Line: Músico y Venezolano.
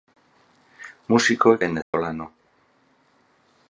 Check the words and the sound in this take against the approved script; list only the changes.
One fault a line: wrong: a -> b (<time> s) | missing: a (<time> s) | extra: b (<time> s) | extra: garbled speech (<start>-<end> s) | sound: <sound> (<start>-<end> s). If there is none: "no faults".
sound: dropout (1.8-1.9 s)